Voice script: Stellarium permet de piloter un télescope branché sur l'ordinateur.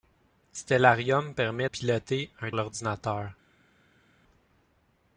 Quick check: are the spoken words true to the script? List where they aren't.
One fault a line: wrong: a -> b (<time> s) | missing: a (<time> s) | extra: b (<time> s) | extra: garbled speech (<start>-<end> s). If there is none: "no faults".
missing: de (1.7 s)
missing: télescope branché sur (2.5 s)